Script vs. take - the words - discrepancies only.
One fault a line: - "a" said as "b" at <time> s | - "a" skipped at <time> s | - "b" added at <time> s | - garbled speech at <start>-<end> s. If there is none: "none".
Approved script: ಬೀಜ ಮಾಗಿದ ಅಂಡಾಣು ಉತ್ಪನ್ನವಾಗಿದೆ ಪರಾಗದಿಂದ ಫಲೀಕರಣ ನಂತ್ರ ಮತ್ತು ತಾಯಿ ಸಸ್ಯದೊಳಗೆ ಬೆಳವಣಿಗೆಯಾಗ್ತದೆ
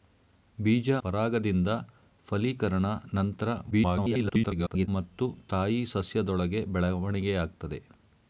- "ಮಾಗಿದ ಅಂಡಾಣು ಉತ್ಪನ್ನವಾಗಿದೆ" skipped at 0.9 s
- garbled speech at 3.7-4.9 s